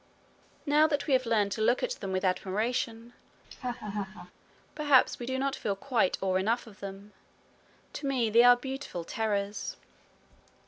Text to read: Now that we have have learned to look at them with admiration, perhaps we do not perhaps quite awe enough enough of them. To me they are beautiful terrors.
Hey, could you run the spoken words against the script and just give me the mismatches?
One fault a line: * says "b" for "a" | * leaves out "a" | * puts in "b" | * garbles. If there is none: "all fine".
* leaves out "have"
* says "feel" for "perhaps"
* leaves out "enough"